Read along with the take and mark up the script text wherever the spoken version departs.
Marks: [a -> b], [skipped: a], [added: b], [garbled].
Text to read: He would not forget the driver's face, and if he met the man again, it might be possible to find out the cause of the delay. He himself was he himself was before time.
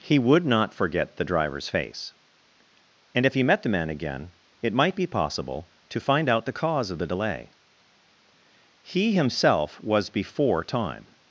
He would not forget the driver's face, and if he met the man again, it might be possible to find out the cause of the delay. He himself was [skipped: he himself was] before time.